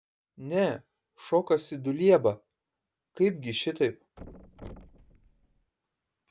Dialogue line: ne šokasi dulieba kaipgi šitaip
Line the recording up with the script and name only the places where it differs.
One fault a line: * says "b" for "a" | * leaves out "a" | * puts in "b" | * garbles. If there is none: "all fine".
all fine